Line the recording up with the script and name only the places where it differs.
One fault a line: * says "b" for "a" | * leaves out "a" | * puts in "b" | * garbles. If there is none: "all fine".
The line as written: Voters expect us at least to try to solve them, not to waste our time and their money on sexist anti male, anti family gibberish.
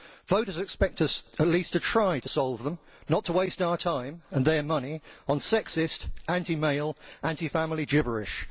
all fine